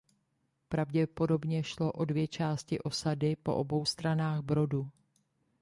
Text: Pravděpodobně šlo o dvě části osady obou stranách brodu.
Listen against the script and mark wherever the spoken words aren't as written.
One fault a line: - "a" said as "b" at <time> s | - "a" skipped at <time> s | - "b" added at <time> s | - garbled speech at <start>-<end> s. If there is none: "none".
- "po" added at 3.4 s